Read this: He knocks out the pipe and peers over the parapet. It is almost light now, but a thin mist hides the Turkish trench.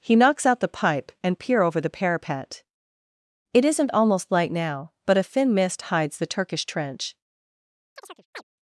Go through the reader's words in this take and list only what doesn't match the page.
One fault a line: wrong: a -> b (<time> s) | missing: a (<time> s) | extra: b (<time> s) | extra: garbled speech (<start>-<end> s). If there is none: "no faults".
wrong: peers -> peer (1.4 s)
wrong: is -> isn't (3.6 s)